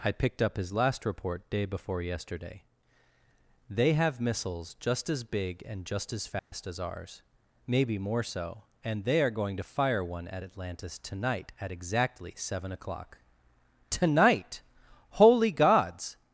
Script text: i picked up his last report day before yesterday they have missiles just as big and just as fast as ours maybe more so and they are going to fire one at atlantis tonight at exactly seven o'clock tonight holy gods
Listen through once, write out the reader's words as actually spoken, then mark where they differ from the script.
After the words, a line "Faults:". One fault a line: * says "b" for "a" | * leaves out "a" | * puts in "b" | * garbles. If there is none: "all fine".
i picked up his last report day before yesterday they have missiles just as big and just as fast as ours maybe more so and they are going to fire one at atlantis tonight at exactly seven o'clock tonight holy gods
Faults:
all fine